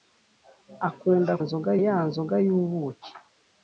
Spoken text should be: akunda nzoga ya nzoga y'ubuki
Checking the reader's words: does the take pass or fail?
pass